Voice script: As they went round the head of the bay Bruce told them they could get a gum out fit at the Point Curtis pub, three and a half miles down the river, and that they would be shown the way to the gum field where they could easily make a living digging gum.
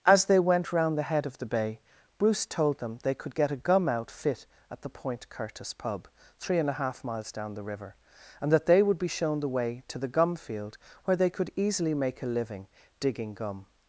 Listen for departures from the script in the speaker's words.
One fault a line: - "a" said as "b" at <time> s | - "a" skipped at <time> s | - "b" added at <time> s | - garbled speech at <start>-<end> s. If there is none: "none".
none